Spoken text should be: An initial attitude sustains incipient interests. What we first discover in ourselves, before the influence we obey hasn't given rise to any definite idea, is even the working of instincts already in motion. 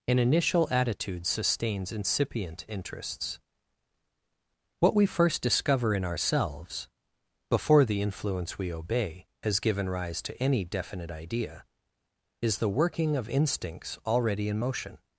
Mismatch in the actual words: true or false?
true